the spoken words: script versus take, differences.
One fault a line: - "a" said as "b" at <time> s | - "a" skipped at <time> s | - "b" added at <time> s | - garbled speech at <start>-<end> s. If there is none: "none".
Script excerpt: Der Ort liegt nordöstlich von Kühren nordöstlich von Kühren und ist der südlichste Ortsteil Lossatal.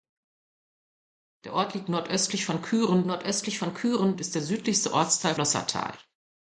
none